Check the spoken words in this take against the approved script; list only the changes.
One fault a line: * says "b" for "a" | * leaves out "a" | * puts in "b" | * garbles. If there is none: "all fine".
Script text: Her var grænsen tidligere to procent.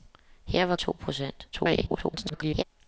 * leaves out "grænsen tidligere"
* garbles